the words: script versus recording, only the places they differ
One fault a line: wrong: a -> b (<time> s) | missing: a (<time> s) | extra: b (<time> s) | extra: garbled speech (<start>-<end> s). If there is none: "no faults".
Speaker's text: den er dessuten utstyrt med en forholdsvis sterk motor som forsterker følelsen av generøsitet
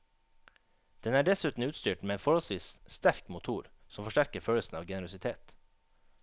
no faults